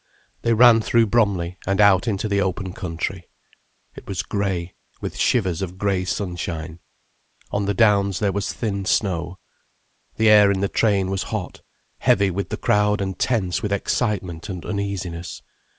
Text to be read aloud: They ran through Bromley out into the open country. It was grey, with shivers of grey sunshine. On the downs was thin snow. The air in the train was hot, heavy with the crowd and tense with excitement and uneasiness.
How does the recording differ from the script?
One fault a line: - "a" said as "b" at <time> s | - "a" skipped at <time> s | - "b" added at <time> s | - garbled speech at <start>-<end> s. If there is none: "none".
- "and" added at 1.7 s
- "there" added at 8.2 s